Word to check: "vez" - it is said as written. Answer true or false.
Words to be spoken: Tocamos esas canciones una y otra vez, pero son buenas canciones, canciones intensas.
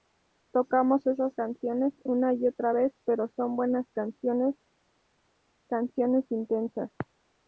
true